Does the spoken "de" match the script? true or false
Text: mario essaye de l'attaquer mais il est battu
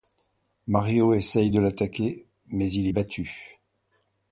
true